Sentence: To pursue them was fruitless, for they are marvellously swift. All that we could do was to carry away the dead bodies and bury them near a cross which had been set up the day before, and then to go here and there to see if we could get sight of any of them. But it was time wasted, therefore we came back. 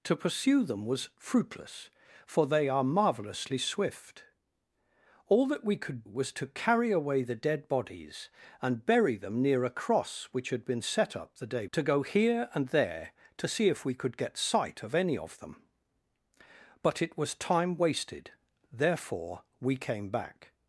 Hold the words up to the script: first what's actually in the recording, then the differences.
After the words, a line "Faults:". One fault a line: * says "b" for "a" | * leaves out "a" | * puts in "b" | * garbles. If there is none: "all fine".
To pursue them was fruitless, for they are marvellously swift. All that we could was to carry away the dead bodies and bury them near a cross which had been set up the day to go here and there to see if we could get sight of any of them. But it was time wasted, therefore we came back.
Faults:
* leaves out "do"
* leaves out "before and then"